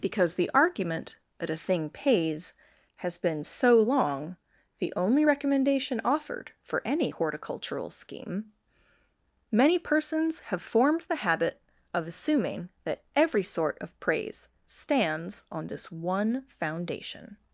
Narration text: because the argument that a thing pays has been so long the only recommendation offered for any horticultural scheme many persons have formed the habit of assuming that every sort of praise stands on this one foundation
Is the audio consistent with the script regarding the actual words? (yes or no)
yes